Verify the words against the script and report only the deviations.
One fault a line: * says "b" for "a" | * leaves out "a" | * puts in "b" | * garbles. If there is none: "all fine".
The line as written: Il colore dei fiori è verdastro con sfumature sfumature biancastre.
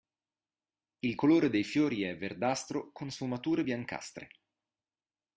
* leaves out "sfumature"